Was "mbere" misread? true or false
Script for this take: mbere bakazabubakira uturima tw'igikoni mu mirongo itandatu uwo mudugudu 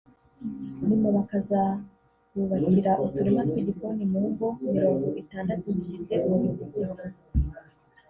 true